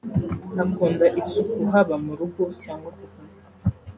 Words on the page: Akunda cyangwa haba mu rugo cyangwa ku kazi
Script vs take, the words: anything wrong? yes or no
yes